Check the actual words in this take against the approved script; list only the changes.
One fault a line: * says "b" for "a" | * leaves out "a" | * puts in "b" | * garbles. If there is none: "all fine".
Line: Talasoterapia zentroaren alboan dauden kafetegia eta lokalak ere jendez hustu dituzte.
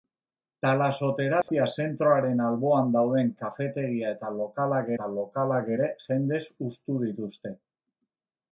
* puts in "eta lokalak"